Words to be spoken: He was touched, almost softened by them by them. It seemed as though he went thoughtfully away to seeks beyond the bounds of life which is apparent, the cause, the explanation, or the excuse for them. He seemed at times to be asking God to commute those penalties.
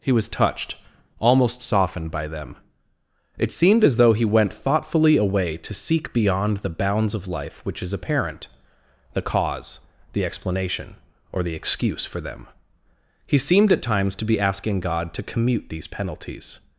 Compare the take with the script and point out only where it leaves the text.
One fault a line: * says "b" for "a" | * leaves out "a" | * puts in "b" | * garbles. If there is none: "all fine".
* leaves out "by them"
* says "seek" for "seeks"
* says "these" for "those"